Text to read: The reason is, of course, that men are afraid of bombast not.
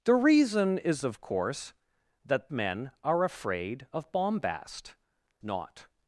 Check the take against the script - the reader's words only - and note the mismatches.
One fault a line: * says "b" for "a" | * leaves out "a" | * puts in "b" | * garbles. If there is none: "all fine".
all fine